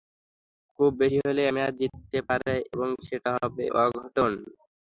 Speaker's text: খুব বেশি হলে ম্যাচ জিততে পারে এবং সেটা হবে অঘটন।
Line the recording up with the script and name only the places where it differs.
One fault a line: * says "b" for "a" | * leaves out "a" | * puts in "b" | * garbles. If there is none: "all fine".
all fine